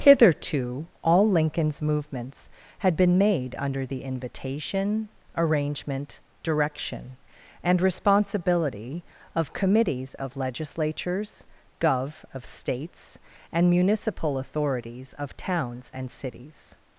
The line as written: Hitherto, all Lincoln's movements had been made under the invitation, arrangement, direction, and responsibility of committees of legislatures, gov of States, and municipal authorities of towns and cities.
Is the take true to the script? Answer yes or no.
yes